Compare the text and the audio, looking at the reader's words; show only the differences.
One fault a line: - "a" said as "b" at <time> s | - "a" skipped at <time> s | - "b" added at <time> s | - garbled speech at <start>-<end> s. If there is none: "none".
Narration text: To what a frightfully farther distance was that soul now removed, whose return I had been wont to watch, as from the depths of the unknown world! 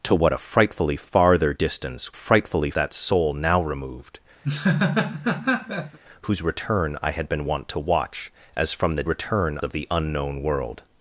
- "was" said as "frightfully" at 2.1 s
- "depths" said as "return" at 9.0 s